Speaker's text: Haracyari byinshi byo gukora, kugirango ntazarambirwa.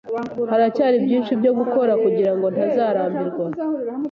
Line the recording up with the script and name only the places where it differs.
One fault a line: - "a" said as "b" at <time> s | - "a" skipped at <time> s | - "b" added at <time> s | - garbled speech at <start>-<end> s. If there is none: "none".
none